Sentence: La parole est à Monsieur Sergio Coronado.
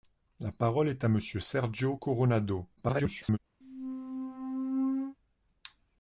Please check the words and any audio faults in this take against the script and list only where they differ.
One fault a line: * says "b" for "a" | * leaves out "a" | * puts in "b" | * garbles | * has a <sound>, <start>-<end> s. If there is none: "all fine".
* garbles
* has a squeak, 3.6-5.2 s